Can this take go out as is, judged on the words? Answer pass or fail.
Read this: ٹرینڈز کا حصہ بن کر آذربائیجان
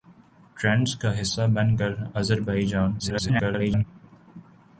fail